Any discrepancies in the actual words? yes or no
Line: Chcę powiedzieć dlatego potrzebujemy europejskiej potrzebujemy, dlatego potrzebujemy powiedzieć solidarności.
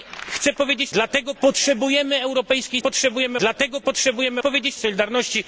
no